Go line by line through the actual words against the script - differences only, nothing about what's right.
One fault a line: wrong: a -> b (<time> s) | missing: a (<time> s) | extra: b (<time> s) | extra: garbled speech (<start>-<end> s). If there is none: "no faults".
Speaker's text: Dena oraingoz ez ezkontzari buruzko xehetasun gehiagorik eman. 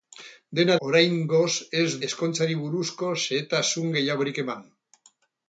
no faults